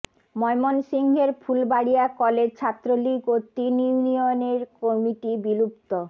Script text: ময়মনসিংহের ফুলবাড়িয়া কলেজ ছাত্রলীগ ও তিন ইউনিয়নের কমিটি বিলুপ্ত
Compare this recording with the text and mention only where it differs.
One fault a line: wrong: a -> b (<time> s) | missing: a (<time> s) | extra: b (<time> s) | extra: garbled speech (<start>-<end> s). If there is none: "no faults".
no faults